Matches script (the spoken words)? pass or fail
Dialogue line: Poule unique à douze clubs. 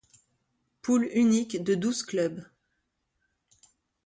fail